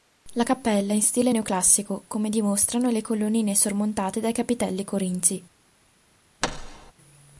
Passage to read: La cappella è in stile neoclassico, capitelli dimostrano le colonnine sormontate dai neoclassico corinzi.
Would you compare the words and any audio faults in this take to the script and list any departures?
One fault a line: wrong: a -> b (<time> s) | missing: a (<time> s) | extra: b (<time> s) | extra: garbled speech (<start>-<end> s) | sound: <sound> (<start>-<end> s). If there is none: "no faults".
wrong: capitelli -> come (2.1 s)
wrong: neoclassico -> capitelli (4.3 s)
sound: thud (6.4-6.9 s)